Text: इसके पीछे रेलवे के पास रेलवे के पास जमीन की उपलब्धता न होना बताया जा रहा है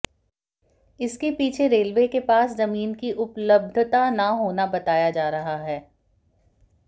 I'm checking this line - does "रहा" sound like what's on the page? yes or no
yes